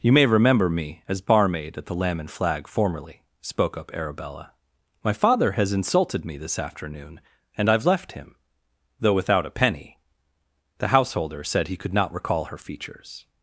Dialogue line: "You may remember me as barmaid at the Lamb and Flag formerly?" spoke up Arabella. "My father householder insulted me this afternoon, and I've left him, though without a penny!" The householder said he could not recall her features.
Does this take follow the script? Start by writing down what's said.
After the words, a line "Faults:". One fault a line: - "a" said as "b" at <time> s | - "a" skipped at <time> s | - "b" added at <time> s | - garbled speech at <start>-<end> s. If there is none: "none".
"You may remember me as barmaid at the Lamb and Flag formerly?" spoke up Arabella. "My father has insulted me this afternoon, and I've left him, though without a penny!" The householder said he could not recall her features.
Faults:
- "householder" said as "has" at 5.5 s